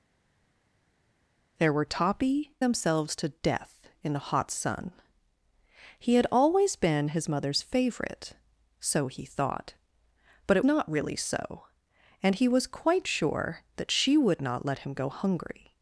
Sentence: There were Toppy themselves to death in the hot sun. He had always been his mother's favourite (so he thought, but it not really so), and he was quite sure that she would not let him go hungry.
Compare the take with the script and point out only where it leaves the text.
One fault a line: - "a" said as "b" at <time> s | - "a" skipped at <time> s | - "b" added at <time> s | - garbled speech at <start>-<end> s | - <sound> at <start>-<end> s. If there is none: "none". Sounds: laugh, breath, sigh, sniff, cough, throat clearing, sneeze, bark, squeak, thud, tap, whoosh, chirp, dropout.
none